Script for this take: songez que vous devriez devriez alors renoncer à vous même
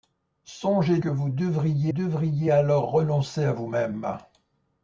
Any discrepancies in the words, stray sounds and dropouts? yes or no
no